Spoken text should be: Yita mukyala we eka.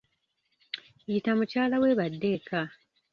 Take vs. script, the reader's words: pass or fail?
fail